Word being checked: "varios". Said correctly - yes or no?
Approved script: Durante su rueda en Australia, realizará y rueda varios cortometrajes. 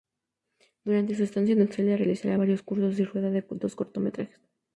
no